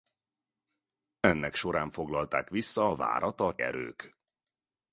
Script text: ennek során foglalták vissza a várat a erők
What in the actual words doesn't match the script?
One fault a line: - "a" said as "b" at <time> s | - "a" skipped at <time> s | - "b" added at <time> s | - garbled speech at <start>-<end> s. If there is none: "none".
none